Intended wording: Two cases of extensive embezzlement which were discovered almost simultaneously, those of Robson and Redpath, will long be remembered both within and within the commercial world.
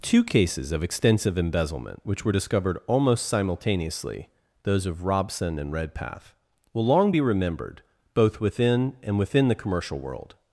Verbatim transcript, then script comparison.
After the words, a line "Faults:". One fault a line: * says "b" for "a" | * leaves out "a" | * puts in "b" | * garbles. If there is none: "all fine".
Two cases of extensive embezzlement which were discovered almost simultaneously, those of Robson and Redpath, will long be remembered both within and within the commercial world.
Faults:
all fine